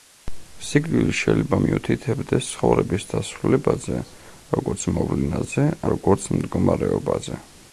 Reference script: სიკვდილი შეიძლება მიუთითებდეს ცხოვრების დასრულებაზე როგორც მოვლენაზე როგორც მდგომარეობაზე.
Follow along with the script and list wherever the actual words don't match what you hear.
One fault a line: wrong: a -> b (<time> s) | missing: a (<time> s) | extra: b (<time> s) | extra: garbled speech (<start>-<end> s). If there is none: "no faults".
no faults